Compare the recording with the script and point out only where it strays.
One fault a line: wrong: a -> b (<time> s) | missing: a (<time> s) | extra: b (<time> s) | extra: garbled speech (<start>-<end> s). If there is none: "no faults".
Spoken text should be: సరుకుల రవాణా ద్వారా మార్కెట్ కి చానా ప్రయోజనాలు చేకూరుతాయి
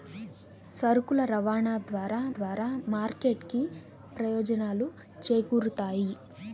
extra: ద్వారా (2.4 s)
missing: చానా (3.6 s)